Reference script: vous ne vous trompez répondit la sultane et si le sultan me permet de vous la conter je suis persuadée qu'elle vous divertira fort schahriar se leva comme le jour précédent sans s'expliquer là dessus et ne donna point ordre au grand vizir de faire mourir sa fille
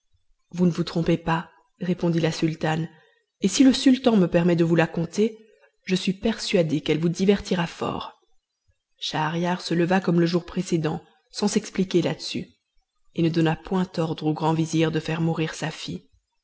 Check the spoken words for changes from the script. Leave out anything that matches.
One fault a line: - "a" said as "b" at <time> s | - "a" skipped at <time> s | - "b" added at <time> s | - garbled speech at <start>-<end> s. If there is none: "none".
- "pas" added at 1.2 s